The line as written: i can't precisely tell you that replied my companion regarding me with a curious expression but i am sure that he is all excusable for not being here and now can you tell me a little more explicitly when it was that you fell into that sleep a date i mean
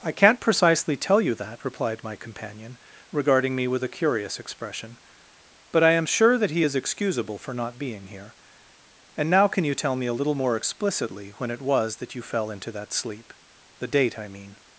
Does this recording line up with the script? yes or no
no